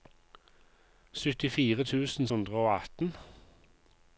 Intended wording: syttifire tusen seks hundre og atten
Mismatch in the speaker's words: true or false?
true